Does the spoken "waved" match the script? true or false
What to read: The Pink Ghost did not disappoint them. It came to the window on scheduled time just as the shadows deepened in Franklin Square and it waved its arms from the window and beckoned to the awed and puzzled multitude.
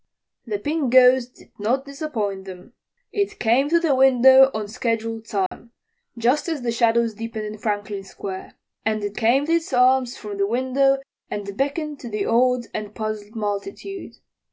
false